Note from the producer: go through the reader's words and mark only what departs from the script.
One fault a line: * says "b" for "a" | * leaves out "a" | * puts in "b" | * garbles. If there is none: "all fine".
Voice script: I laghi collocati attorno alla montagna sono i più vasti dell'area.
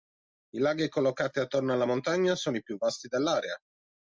all fine